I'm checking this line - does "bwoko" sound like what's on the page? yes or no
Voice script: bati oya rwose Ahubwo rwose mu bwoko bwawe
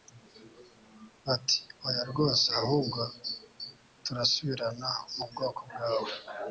yes